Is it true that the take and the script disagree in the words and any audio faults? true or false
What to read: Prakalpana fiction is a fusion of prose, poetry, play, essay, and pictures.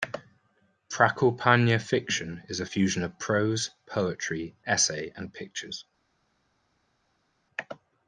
true